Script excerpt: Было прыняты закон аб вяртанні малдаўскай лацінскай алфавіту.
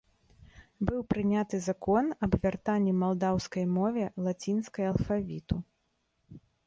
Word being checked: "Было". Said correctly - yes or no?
no